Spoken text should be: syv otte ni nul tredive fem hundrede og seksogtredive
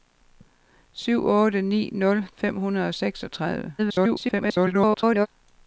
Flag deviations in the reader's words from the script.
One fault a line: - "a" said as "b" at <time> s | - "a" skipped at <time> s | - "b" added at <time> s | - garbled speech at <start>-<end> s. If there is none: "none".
- "tredive" skipped at 2.2 s
- garbled speech at 3.8-5.3 s